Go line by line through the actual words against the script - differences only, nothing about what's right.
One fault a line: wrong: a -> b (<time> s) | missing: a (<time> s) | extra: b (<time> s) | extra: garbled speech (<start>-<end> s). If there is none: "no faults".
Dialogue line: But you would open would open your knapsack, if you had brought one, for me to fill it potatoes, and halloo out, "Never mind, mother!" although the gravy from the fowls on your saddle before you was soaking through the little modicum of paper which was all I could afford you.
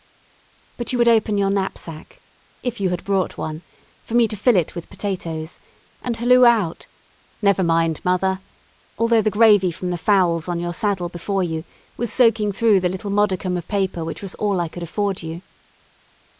missing: would open (1.4 s)
extra: with (4.8 s)